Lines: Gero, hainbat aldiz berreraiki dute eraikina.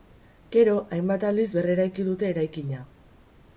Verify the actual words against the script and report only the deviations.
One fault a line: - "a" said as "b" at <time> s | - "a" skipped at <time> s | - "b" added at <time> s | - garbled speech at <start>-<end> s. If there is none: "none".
none